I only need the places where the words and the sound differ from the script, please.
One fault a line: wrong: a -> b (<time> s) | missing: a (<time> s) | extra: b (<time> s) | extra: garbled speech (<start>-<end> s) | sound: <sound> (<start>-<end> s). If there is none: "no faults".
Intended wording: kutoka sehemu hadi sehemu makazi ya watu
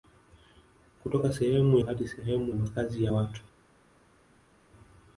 no faults